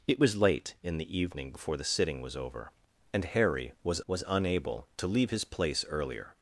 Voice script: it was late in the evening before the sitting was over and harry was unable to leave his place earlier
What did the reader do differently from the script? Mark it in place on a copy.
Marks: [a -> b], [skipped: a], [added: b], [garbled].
it was late in the evening before the sitting was over and harry was [added: was] unable to leave his place earlier